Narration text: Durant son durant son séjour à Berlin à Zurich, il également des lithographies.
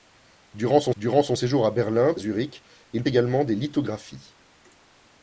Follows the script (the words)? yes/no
yes